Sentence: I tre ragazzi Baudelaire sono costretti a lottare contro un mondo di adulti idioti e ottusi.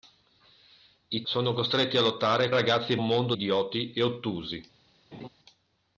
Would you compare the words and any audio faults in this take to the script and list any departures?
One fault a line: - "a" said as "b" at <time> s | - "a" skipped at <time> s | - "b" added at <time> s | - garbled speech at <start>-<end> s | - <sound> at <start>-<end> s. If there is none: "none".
- "tre ragazzi Baudelaire" skipped at 1.2 s
- "contro" said as "ragazzi" at 2.5 s
- "di adulti" skipped at 3.3 s
- laugh at 5.1-5.3 s